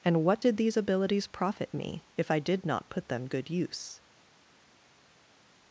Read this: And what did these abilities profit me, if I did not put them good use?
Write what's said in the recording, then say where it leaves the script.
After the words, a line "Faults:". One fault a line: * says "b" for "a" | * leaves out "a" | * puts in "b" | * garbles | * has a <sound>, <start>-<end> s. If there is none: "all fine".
And what did these abilities profit me, if I did not put them good use?
Faults:
all fine